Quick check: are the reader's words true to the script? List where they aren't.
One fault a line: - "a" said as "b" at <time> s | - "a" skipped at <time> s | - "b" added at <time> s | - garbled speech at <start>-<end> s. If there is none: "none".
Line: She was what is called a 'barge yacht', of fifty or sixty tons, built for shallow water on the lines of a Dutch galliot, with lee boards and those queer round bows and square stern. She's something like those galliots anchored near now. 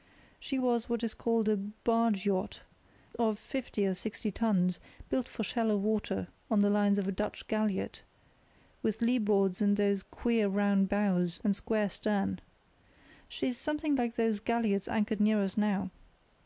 - "us" added at 15.4 s